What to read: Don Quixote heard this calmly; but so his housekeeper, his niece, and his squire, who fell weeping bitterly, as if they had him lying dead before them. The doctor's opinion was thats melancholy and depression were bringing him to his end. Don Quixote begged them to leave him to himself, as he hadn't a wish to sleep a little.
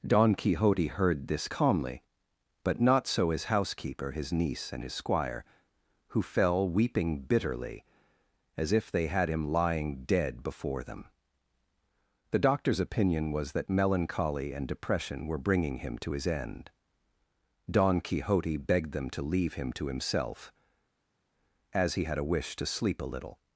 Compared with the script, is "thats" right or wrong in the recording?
wrong